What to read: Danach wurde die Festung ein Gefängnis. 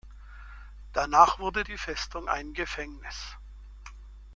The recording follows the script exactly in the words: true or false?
true